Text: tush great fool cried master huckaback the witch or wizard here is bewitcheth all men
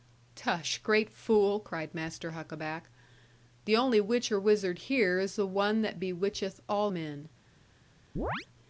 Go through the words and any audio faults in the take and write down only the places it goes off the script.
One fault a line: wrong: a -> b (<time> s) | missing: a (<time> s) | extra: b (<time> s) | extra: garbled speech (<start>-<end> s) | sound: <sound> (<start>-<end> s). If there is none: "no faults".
extra: only (3.8 s)
extra: the one that (5.3 s)
sound: chirp (8.2-8.5 s)